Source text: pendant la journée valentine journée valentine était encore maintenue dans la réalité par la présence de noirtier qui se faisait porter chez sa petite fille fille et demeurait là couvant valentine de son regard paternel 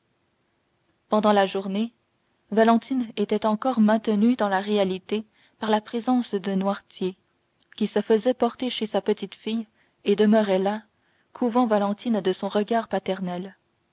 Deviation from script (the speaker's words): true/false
true